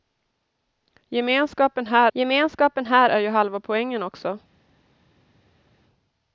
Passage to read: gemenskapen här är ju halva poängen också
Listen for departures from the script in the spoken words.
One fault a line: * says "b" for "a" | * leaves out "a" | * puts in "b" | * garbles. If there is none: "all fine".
* puts in "gemenskapen här"